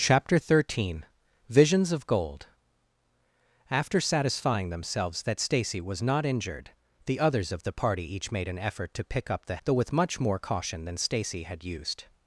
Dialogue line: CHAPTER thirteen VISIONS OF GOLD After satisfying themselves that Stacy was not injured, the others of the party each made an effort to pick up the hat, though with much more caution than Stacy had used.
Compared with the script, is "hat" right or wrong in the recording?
wrong